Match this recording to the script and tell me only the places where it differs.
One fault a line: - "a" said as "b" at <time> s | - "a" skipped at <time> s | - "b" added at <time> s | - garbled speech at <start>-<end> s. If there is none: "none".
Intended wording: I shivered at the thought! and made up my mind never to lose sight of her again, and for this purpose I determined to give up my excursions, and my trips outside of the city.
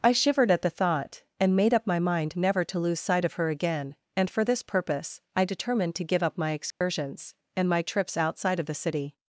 none